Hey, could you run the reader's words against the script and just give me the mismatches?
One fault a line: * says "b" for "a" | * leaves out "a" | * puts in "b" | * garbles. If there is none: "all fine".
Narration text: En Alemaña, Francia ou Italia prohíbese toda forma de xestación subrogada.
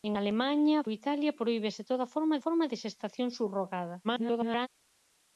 * leaves out "Francia"
* puts in "forma"
* garbles